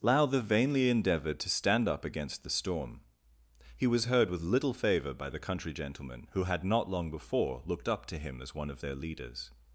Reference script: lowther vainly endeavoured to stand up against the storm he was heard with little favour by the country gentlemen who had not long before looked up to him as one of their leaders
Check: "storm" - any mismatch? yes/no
no